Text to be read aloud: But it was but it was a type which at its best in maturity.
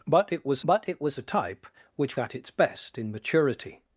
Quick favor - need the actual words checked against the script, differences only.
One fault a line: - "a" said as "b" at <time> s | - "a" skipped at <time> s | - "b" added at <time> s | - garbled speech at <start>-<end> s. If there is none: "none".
none